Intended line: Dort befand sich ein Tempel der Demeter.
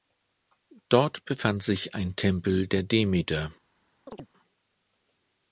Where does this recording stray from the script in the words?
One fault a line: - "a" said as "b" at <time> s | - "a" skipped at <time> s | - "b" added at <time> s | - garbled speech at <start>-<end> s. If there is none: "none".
none